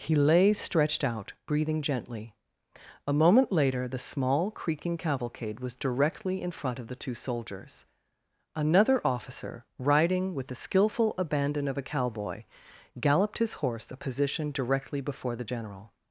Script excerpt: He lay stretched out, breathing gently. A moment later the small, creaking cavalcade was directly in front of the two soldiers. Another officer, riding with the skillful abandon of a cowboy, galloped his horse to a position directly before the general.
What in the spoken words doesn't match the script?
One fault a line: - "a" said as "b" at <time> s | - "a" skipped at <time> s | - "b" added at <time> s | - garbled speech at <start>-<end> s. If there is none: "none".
- "to" skipped at 13.9 s